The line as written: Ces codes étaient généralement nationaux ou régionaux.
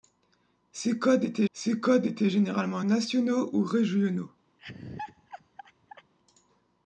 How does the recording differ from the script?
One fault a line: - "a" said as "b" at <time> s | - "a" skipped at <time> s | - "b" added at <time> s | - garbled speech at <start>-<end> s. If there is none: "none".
- "ces codes étaient" added at 1.5 s